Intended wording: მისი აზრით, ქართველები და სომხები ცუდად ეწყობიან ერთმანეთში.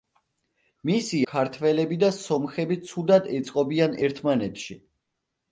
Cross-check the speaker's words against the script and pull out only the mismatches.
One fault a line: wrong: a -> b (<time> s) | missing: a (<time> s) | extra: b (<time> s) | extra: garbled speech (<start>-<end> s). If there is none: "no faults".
missing: აზრით (1.2 s)